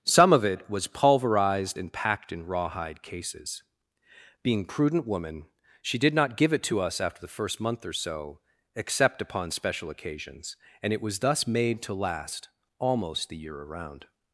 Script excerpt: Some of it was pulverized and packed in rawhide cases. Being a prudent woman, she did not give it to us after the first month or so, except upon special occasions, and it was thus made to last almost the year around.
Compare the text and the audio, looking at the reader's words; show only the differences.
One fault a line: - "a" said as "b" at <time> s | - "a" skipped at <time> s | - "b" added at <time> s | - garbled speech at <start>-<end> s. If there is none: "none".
- "a" skipped at 4.7 s